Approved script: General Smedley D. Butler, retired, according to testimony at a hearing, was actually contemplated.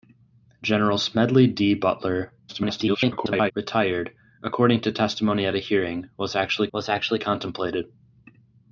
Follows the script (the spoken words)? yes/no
no